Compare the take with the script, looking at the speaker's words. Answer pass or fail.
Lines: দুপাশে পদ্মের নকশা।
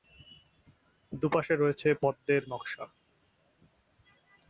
fail